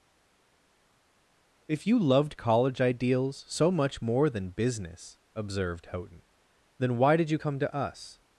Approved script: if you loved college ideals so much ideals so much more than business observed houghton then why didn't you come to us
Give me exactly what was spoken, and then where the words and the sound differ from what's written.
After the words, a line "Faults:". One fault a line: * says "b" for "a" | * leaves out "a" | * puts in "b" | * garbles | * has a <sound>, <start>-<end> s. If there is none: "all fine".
if you loved college ideals so much more than business observed houghton then why did you come to us
Faults:
* leaves out "ideals so much"
* says "did" for "didn't"